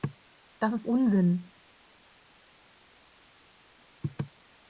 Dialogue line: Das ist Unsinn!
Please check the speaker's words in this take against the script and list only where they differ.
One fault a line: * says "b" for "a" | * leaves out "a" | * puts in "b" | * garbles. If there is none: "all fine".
all fine